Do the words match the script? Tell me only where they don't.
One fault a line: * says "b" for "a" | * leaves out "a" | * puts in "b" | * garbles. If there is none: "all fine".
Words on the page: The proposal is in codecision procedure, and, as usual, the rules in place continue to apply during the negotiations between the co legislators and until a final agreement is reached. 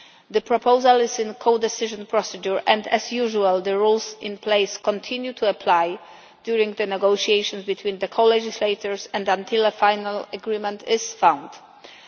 all fine